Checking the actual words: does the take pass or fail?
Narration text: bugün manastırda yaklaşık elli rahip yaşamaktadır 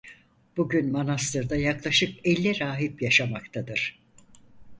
pass